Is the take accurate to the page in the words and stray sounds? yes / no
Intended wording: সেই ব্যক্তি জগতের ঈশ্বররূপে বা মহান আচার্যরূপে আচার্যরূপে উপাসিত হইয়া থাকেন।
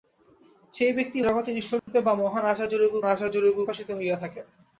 no